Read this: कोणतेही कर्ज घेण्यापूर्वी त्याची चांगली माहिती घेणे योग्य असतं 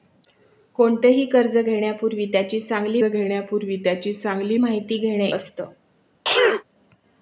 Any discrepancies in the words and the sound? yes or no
yes